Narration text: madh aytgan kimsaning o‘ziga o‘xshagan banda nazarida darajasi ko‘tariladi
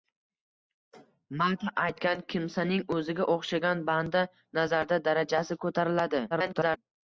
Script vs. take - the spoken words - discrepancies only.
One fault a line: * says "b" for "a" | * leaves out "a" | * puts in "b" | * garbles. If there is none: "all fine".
* garbles